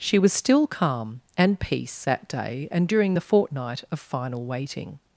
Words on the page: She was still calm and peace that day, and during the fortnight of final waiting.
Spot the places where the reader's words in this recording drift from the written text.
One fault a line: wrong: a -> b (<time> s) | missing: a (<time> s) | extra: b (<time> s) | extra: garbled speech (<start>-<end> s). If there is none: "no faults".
no faults